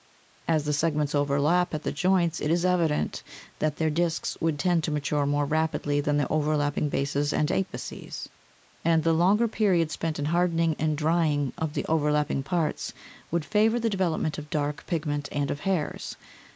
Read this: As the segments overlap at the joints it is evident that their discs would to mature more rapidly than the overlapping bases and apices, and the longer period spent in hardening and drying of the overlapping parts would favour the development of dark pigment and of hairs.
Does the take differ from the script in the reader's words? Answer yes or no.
yes